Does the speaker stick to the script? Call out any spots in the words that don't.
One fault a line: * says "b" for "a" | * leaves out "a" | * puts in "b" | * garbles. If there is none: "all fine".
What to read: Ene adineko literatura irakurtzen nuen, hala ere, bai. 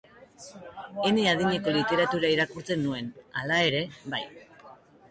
all fine